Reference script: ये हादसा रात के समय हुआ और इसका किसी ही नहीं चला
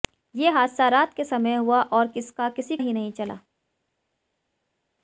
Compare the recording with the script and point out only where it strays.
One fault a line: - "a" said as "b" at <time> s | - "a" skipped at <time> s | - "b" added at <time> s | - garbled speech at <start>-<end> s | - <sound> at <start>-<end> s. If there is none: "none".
none